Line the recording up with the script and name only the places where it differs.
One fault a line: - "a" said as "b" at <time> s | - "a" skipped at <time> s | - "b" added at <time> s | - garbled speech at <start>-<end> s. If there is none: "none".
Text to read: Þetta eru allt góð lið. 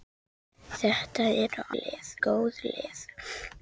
- "allt" said as "lið" at 1.8 s